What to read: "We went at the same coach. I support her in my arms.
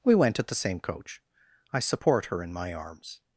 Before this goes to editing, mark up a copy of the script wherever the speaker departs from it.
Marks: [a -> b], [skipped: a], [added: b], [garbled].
"We went at the same coach. I support her in my arms.